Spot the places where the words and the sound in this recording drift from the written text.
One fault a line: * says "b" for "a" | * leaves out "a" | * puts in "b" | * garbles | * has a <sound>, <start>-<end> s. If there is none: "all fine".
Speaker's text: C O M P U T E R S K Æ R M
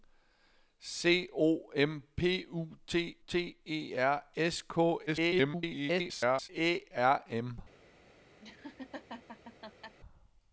* puts in "T"
* garbles
* has a laugh, 8.4-9.9 s